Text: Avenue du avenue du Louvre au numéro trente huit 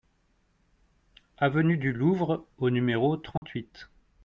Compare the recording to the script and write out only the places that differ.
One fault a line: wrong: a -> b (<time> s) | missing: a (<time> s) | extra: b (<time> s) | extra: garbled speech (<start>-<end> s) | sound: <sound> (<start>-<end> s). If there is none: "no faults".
missing: avenue du (1.9 s)
sound: dropout (3.4-3.4 s)